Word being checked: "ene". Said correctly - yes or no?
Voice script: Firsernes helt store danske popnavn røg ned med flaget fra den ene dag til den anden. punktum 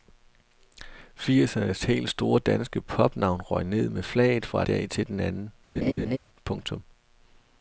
no